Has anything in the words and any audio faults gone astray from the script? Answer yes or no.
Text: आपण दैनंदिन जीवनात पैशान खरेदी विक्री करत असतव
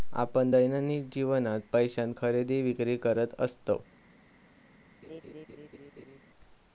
yes